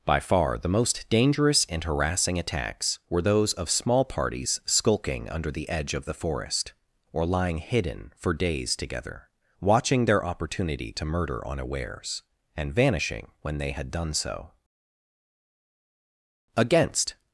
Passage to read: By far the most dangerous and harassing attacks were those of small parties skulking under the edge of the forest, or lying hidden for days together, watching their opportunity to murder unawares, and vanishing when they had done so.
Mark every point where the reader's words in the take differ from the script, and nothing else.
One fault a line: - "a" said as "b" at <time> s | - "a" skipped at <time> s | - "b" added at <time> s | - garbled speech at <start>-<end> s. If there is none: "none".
- "Against" added at 16.6 s